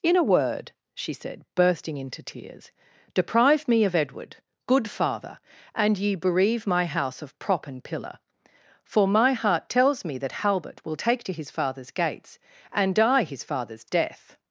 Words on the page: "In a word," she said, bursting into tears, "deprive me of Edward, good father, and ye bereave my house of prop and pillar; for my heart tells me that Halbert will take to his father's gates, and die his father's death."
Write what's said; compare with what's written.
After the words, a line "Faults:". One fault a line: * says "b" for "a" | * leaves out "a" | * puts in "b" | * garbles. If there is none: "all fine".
"In a word," she said, bursting into tears, "deprive me of Edward, good father, and ye bereave my house of prop and pillar; for my heart tells me that Halbert will take to his father's gates, and die his father's death."
Faults:
all fine